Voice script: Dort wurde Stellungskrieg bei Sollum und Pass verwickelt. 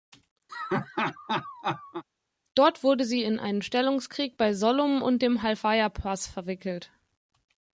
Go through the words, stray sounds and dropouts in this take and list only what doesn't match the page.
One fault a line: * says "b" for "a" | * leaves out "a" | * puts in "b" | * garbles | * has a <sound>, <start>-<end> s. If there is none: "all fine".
* has a laugh, 0.5-2.0 s
* puts in "sie in einen"
* puts in "dem Halfaya"